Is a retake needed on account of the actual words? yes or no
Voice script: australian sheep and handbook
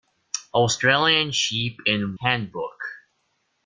no